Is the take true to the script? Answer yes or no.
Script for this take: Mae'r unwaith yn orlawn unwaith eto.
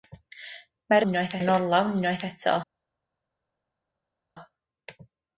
yes